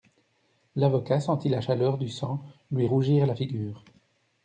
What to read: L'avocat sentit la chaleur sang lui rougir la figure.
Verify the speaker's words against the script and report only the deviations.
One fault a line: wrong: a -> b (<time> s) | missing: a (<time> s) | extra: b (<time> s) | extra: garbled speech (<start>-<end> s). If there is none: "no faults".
extra: du (2.0 s)